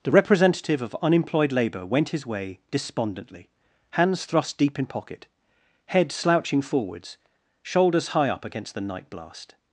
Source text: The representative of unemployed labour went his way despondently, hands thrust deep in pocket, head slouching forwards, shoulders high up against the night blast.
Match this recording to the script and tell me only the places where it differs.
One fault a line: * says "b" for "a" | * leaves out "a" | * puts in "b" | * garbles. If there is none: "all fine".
all fine